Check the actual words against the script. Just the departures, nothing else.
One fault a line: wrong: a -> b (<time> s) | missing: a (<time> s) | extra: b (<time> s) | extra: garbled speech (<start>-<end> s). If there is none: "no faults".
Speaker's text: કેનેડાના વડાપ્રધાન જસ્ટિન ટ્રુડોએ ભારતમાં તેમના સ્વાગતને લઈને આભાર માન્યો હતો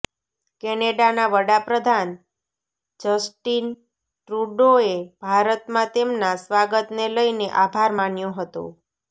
no faults